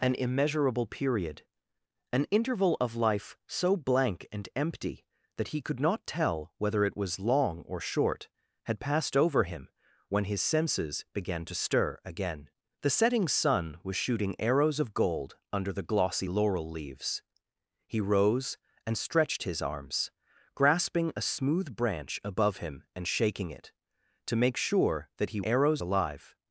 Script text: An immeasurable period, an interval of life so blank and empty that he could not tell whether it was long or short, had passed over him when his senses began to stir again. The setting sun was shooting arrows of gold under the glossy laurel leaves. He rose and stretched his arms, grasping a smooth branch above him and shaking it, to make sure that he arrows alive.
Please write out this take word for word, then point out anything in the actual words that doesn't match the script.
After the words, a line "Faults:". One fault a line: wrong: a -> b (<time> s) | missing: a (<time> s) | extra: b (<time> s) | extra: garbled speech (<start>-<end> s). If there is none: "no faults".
An immeasurable period, an interval of life so blank and empty that he could not tell whether it was long or short, had passed over him when his senses began to stir again. The setting sun was shooting arrows of gold under the glossy laurel leaves. He rose and stretched his arms, grasping a smooth branch above him and shaking it, to make sure that he arrows alive.
Faults:
no faults